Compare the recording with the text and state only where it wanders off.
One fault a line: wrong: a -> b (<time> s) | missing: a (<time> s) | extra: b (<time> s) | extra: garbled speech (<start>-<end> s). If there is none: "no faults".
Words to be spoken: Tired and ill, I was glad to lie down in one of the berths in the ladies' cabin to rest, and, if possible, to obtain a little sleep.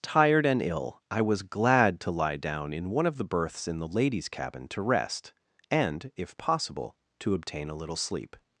no faults